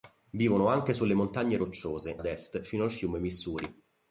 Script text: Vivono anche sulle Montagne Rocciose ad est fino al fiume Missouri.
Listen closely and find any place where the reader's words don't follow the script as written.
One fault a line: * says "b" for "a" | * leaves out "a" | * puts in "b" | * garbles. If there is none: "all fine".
all fine